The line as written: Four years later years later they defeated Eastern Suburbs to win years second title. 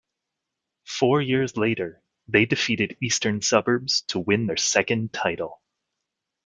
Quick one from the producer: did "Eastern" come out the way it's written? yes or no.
yes